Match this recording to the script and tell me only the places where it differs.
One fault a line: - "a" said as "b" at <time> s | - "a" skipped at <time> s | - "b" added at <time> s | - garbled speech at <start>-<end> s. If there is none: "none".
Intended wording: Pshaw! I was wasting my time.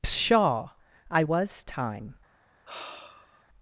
- "wasting my" skipped at 1.6 s